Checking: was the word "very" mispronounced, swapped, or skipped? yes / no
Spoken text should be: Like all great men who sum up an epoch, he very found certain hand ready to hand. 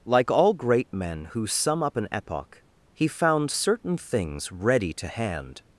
yes